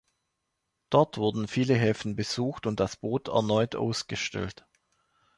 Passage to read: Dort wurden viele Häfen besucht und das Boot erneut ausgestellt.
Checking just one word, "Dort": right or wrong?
right